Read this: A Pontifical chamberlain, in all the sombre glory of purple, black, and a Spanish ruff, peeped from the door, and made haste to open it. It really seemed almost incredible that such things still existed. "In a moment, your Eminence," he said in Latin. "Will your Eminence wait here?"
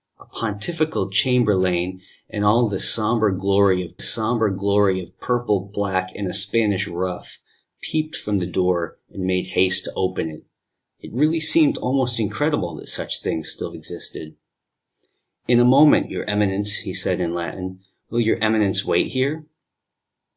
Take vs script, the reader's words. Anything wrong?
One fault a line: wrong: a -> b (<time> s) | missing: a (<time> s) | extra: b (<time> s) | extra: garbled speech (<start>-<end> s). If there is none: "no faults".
extra: sombre glory of (4.0 s)